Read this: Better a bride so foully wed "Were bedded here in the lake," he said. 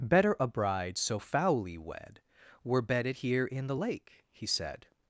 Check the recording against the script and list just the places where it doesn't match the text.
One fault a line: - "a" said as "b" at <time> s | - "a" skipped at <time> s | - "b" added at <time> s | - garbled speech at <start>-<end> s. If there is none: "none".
none